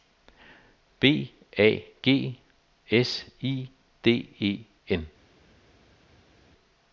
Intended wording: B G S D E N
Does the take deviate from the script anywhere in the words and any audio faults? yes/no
yes